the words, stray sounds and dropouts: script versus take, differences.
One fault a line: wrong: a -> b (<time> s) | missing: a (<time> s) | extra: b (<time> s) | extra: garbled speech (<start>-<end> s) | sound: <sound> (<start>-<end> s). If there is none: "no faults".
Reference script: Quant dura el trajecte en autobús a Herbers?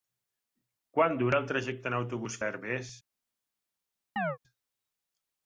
sound: chirp (4.2-4.4 s)